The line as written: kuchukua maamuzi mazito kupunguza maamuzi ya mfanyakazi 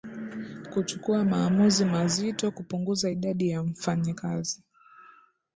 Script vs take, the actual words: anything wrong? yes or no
yes